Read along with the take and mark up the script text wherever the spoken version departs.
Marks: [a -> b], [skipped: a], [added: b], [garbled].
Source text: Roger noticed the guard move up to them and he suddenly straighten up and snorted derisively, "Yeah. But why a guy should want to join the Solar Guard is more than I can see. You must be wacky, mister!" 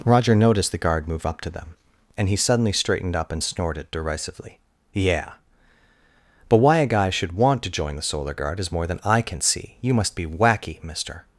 Roger noticed the guard move up to them and he suddenly [straighten -> straightened] up and snorted derisively, "Yeah. But why a guy should want to join the Solar Guard is more than I can see. You must be wacky, mister!"